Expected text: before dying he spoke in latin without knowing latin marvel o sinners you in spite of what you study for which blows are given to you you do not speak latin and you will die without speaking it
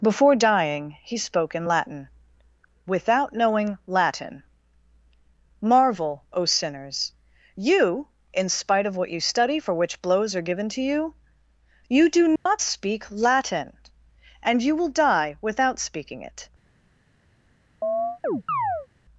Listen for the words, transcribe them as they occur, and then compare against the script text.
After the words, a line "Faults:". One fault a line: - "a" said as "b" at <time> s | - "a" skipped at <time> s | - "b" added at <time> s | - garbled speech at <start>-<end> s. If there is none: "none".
before dying he spoke in latin without knowing latin marvel o sinners you in spite of what you study for which blows are given to you you do not speak latin and you will die without speaking it
Faults:
none